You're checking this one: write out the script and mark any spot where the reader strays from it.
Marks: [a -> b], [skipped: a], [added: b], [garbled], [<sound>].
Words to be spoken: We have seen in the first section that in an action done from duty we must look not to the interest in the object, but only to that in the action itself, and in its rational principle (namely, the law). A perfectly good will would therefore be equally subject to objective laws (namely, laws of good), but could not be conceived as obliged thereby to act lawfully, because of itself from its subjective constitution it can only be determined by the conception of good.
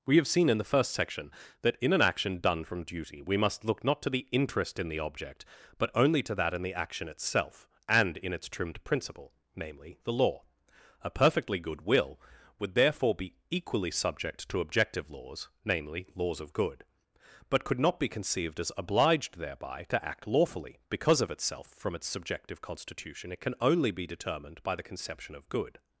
We have seen in the first section that in an action done from duty we must look not to the interest in the object, but only to that in the action itself, and in its [rational -> trimmed] principle (namely, the law). A perfectly good will would therefore be equally subject to objective laws (namely, laws of good), but could not be conceived as obliged thereby to act lawfully, because of itself from its subjective constitution it can only be determined by the conception of good.